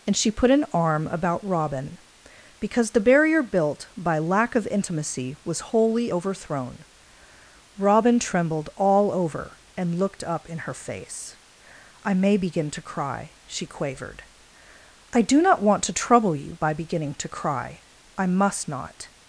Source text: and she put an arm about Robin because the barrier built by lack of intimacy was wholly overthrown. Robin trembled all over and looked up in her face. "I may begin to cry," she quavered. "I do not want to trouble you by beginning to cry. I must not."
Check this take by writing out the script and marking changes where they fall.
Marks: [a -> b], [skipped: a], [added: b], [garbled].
and she put an arm about Robin because the barrier built by lack of intimacy was wholly overthrown. Robin trembled all over and looked up in her face. "I may begin to cry," she quavered. "I do not want to trouble you by beginning to cry. I must not."